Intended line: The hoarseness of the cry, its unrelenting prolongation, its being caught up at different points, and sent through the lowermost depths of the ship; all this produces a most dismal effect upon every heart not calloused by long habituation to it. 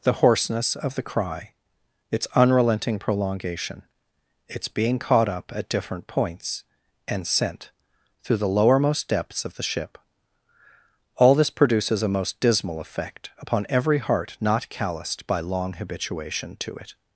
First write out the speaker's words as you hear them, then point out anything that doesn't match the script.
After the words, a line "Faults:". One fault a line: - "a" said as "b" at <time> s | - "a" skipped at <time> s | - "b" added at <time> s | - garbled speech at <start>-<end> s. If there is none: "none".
The hoarseness of the cry, its unrelenting prolongation, its being caught up at different points, and sent through the lowermost depths of the ship; all this produces a most dismal effect upon every heart not calloused by long habituation to it.
Faults:
none